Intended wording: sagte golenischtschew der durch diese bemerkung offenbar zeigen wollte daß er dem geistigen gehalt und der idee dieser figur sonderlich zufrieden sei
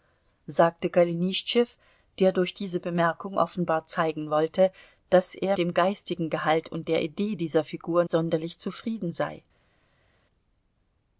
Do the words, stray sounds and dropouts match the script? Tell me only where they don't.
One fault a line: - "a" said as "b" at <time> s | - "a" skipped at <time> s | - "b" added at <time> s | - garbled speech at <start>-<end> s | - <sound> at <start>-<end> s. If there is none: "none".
none